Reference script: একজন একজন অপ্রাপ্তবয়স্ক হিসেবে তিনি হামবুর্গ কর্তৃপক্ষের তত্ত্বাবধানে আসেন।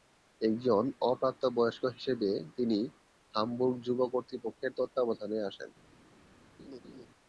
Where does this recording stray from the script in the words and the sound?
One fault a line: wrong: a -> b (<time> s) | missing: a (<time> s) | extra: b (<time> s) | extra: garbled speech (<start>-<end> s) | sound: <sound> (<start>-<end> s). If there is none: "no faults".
missing: একজন (0.8 s)
extra: যুব (3.9 s)
sound: laugh (6.6-7.1 s)